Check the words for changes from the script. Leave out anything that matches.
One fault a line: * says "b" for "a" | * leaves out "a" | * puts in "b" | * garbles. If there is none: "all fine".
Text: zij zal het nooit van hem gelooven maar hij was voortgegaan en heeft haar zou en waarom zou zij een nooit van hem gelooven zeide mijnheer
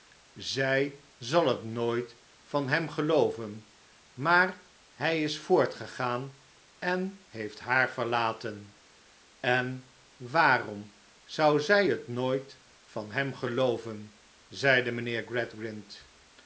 * says "is" for "was"
* says "verlaten" for "zou"
* says "het" for "een"